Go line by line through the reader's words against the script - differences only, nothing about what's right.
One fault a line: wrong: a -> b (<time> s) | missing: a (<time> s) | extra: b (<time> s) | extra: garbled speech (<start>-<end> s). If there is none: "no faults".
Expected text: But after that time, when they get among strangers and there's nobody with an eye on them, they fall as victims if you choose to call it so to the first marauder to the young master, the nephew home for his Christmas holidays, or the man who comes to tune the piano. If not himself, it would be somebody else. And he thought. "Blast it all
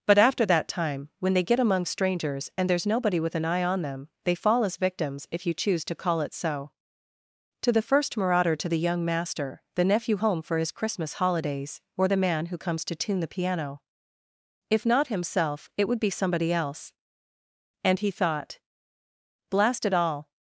no faults